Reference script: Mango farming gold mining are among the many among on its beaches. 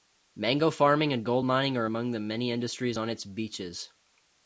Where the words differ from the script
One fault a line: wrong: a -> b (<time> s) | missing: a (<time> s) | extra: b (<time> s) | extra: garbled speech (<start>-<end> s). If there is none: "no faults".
extra: and (1.1 s)
wrong: among -> industries (2.5 s)